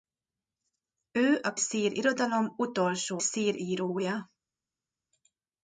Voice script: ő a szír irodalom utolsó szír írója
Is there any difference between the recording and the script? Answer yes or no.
no